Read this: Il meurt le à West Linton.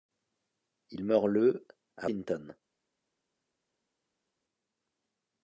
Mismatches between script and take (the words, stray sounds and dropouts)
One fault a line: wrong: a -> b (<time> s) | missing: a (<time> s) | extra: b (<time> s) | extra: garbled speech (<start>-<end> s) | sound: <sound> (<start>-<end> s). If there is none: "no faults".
missing: West (2.1 s)